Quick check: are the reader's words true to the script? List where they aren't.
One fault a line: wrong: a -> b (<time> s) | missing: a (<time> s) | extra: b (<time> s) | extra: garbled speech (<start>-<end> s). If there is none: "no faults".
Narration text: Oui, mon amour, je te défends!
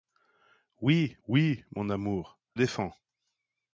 extra: oui (1.3 s)
missing: je te (2.4 s)